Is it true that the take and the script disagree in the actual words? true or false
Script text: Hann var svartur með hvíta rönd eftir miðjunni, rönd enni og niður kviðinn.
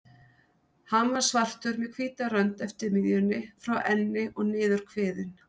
true